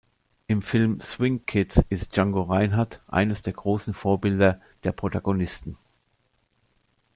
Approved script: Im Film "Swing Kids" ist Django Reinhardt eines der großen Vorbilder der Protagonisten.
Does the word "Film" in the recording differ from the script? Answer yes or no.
no